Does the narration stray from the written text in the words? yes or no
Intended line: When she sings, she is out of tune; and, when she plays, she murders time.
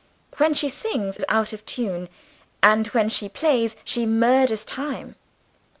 yes